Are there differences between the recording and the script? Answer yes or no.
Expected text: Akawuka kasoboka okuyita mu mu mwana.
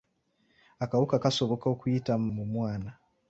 no